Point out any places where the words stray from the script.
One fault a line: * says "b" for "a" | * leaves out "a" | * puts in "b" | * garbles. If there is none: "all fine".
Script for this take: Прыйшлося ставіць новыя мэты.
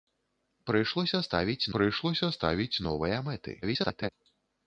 * puts in "прыйшлося ставіць"
* garbles